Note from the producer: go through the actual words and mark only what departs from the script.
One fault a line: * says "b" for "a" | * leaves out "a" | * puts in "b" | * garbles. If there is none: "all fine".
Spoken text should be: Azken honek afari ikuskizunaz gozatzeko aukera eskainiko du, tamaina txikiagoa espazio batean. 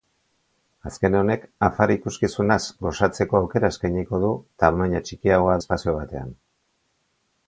all fine